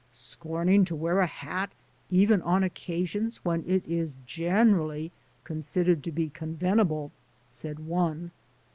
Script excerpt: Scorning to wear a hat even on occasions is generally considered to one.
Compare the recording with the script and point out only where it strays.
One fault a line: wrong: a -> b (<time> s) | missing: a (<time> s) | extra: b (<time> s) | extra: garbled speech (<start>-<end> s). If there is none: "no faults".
extra: when it (3.5 s)
extra: be convenable said (6.1 s)